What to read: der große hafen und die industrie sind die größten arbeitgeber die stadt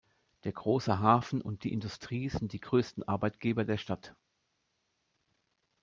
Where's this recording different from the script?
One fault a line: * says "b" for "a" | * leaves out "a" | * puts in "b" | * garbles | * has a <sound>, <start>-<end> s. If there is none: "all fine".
* says "der" for "die"